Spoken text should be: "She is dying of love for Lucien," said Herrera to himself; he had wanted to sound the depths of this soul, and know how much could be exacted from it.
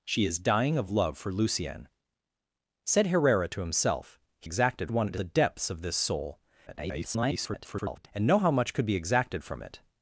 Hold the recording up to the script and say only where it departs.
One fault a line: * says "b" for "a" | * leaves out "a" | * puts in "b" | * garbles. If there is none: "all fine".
* says "exacted" for "had"
* leaves out "sound"
* garbles